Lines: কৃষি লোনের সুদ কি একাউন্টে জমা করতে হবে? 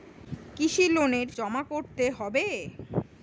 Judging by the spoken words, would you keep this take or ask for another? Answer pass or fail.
fail